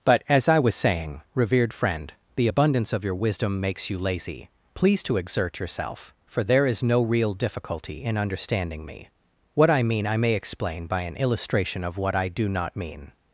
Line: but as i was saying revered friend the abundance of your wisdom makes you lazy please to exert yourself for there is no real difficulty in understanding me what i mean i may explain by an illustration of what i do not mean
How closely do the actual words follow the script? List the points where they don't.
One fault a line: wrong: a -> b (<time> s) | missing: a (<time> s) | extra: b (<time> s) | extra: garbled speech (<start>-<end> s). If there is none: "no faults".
no faults